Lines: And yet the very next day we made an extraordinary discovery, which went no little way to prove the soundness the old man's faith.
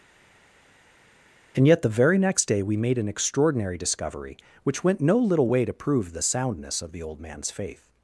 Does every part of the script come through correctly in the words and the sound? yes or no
no